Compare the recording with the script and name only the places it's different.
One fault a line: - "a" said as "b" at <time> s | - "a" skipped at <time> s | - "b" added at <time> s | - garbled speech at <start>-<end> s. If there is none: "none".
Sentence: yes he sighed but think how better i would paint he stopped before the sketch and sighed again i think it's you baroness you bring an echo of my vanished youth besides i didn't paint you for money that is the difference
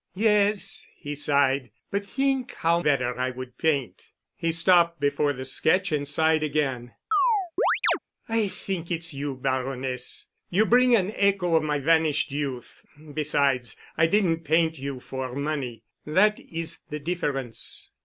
none